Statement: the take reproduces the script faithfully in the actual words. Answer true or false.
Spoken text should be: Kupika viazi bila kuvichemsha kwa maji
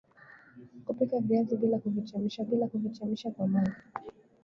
false